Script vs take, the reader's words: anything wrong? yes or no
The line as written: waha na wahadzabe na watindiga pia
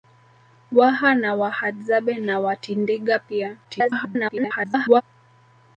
yes